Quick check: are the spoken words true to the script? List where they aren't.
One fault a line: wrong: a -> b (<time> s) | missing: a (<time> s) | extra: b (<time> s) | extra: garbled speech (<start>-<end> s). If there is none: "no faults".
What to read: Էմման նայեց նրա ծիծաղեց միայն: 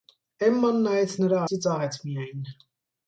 no faults